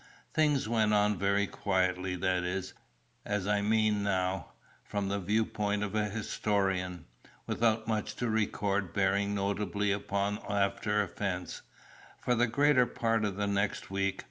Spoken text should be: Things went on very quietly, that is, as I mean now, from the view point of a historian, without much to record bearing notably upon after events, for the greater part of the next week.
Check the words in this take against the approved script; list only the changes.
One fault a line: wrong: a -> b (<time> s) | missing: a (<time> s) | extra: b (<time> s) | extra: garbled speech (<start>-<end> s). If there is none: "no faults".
no faults